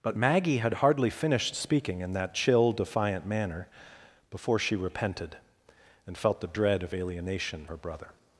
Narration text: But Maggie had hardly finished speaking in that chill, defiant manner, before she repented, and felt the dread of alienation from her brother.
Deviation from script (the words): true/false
true